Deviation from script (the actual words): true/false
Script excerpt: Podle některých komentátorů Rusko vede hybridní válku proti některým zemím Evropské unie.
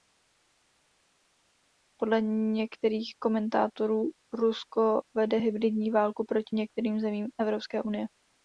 false